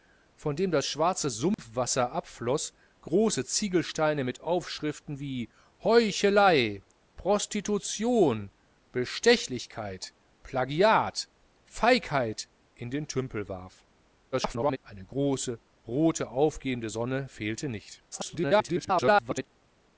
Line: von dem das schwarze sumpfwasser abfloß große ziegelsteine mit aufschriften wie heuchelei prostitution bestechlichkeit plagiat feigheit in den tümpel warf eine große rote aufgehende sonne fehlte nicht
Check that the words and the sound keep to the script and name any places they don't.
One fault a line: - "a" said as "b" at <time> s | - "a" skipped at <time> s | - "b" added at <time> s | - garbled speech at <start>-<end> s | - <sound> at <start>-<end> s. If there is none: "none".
- dropout at 1.5-1.6 s
- garbled speech at 14.3-14.8 s
- garbled speech at 18.1-19.5 s